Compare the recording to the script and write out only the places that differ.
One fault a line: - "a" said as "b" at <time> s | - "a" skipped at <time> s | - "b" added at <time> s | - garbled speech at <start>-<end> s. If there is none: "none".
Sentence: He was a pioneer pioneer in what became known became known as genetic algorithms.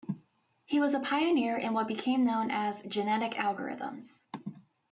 - "pioneer" skipped at 1.6 s
- "became known" skipped at 2.5 s